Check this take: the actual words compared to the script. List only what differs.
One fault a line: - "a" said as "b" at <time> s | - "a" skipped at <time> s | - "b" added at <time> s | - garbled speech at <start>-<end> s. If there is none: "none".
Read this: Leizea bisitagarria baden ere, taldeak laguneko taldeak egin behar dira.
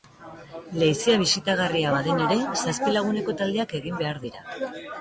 - "taldeak" said as "zazpi" at 2.6 s